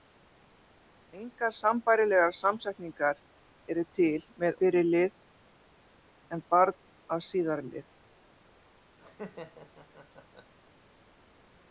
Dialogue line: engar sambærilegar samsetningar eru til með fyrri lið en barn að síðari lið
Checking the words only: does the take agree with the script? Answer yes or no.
yes